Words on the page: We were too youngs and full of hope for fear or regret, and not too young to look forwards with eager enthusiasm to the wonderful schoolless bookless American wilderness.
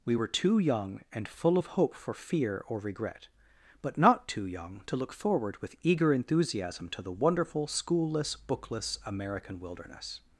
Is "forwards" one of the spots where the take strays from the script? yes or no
yes